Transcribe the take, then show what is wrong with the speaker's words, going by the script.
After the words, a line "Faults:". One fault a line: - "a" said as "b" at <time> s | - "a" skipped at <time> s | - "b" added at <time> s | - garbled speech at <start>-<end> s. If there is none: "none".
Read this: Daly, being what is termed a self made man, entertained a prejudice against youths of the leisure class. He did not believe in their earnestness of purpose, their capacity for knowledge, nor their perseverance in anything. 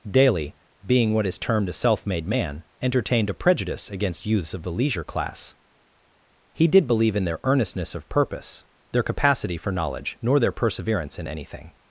Daly, being what is termed a self made man, entertained a prejudice against youths of the leisure class. He did believe in their earnestness of purpose, their capacity for knowledge, nor their perseverance in anything.
Faults:
- "not" skipped at 6.9 s